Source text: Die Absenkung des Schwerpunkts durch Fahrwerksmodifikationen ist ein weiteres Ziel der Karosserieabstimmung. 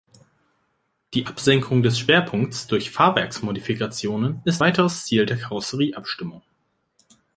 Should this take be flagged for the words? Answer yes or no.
yes